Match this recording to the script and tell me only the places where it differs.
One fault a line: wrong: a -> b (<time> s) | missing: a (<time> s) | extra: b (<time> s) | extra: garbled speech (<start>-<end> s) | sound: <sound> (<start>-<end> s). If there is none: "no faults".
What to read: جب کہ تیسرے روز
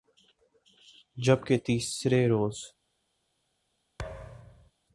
sound: thud (4.0-4.7 s)